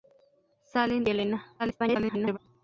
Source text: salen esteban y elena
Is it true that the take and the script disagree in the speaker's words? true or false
true